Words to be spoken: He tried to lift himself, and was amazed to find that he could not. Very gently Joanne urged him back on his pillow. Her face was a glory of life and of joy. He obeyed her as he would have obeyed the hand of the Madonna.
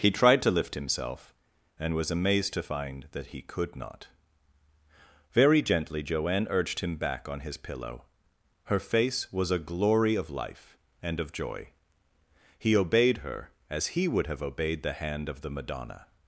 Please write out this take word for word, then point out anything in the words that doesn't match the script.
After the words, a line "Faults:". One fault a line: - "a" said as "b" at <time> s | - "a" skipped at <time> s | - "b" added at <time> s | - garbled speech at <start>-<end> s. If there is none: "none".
He tried to lift himself, and was amazed to find that he could not. Very gently Joanne urged him back on his pillow. Her face was a glory of life and of joy. He obeyed her as he would have obeyed the hand of the Madonna.
Faults:
none